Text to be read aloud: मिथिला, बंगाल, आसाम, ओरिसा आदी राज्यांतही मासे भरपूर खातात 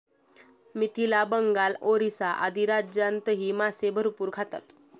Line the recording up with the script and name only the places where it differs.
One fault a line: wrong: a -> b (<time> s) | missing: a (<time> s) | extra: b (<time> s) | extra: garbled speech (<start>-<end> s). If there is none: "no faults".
missing: आसाम (1.8 s)